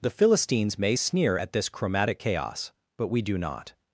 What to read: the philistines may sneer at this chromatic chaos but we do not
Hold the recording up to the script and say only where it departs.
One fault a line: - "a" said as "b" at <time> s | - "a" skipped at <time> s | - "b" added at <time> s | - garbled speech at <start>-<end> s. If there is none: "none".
none